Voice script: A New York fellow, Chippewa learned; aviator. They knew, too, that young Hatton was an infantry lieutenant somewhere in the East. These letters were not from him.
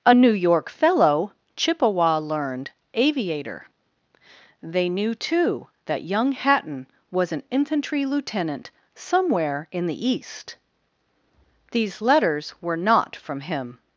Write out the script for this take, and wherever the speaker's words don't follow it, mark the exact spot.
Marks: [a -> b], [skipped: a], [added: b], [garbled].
A New York fellow, Chippewa learned; aviator. They knew, too, that young Hatton was an infantry lieutenant somewhere in the East. These letters were not from him.